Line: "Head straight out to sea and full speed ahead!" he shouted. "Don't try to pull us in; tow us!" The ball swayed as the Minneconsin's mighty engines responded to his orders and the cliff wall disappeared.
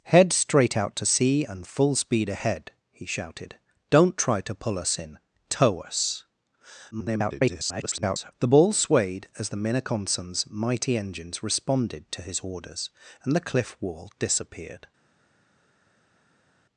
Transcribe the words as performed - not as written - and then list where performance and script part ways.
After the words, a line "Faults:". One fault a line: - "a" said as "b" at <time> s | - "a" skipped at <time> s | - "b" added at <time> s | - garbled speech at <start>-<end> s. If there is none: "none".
"Head straight out to sea and full speed ahead!" he shouted. "Don't try to pull us in; tow us!" [garbled] The ball swayed as the Minneconsin's mighty engines responded to his orders and the cliff wall disappeared.
Faults:
- garbled speech at 6.9-8.3 s